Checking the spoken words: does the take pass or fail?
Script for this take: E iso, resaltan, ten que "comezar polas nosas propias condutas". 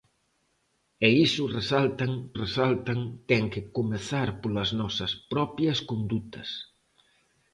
fail